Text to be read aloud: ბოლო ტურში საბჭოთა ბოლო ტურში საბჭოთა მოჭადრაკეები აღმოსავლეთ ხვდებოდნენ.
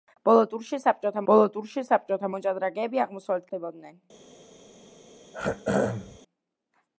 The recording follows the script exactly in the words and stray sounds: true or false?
false